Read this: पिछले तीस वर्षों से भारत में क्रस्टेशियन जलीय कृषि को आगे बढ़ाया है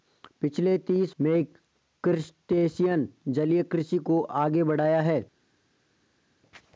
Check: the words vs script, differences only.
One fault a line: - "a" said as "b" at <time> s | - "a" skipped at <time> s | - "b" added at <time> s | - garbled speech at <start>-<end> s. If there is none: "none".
- "वर्षों से भारत" skipped at 1.1 s